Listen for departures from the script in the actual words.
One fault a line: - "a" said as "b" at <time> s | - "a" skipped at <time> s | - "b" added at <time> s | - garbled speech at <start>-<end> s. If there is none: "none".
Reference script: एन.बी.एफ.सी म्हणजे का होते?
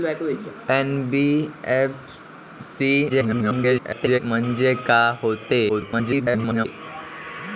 - garbled speech at 3.1-4.2 s
- garbled speech at 5.7-6.7 s